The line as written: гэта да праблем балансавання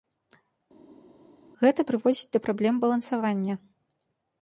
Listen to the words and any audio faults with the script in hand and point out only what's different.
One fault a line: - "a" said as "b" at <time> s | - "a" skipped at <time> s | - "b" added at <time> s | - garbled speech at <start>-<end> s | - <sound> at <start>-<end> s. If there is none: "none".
- "прыводзіць" added at 1.9 s